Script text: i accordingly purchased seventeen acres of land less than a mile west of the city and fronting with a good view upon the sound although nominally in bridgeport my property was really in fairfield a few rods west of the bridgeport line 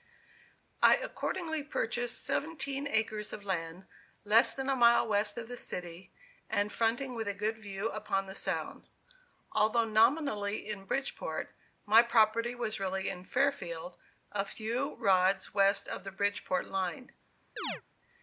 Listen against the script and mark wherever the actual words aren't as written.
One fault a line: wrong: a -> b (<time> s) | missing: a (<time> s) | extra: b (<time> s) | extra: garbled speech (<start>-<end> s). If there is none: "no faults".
no faults